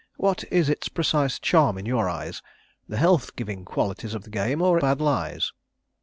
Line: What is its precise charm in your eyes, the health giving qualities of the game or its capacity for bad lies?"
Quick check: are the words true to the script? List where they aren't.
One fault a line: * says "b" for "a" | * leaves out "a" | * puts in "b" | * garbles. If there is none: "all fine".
* leaves out "its capacity for"